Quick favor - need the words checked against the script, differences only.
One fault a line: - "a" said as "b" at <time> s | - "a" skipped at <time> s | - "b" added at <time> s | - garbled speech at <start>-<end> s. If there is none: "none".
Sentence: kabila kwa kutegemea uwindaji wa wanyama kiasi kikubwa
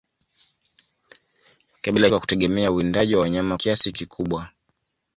none